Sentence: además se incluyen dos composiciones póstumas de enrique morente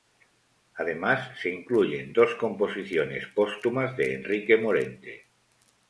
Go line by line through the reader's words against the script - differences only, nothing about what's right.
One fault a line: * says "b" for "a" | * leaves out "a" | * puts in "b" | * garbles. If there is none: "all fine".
all fine